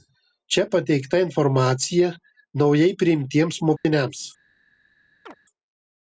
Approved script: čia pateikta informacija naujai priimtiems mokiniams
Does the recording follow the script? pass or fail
pass